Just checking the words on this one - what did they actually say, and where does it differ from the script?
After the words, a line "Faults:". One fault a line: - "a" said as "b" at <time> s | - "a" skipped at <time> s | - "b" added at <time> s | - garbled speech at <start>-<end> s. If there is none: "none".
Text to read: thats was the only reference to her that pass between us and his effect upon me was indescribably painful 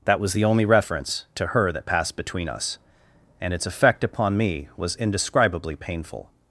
that was the only reference to her that passed between us and its effect upon me was indescribably painful
Faults:
- "thats" said as "that" at 0.1 s
- "pass" said as "passed" at 1.9 s
- "his" said as "its" at 3.5 s